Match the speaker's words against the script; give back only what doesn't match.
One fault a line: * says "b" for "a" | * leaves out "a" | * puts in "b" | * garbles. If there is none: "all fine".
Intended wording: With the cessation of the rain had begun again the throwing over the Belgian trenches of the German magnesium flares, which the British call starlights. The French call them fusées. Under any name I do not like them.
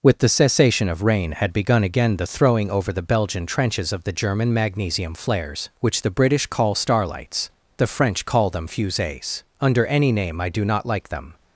* leaves out "the"